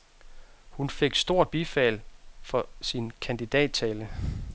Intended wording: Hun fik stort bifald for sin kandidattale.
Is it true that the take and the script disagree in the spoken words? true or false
false